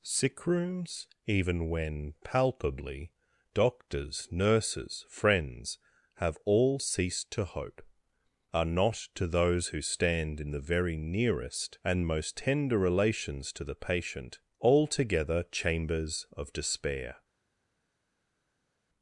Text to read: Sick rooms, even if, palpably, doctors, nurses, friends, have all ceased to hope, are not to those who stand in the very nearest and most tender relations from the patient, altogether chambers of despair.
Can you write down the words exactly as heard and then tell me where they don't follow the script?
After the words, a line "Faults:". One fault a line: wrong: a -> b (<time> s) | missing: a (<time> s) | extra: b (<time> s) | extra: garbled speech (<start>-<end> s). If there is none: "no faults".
Sick rooms, even when, palpably, doctors, nurses, friends, have all ceased to hope, are not to those who stand in the very nearest and most tender relations to the patient, altogether chambers of despair.
Faults:
wrong: if -> when (1.7 s)
wrong: from -> to (13.5 s)